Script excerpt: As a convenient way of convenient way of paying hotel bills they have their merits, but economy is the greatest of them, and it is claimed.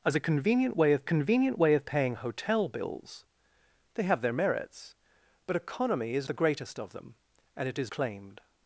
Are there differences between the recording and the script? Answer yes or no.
no